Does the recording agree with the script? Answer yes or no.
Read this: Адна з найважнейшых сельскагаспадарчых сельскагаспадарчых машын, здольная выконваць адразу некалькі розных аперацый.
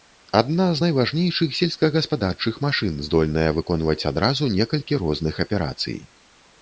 no